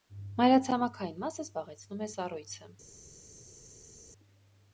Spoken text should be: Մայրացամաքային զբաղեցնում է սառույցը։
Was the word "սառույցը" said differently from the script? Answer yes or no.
no